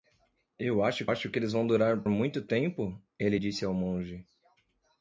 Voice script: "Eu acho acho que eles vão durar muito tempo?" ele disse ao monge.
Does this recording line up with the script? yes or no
yes